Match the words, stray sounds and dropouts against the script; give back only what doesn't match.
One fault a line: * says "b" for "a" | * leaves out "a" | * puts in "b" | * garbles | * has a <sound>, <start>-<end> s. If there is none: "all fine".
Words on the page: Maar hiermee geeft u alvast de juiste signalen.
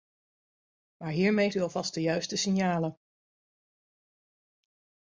* leaves out "geeft"